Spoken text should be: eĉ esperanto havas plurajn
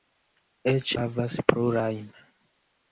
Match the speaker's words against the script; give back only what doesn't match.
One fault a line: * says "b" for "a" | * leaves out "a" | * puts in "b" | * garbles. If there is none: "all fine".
* leaves out "esperanto"